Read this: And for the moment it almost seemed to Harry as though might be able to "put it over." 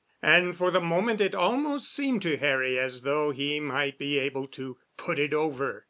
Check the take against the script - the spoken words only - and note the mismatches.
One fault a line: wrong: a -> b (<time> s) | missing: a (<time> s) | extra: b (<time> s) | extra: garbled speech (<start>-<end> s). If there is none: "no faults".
extra: he (3.3 s)